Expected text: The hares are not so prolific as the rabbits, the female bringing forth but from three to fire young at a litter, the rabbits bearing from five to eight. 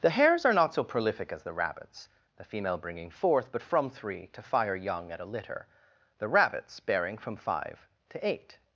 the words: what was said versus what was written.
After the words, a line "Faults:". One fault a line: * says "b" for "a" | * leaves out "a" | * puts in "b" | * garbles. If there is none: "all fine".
The hares are not so prolific as the rabbits, the female bringing forth but from three to fire young at a litter, the rabbits bearing from five to eight.
Faults:
all fine